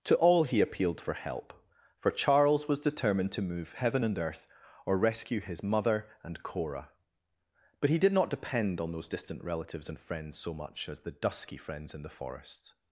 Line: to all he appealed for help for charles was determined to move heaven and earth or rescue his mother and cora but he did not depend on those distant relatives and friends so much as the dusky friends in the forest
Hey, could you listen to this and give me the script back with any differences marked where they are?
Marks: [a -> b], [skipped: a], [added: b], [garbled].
to all he appealed for help for charles was determined to move heaven and earth or rescue his mother and cora but he did not depend on those distant relatives and friends so much as the dusky friends in the forest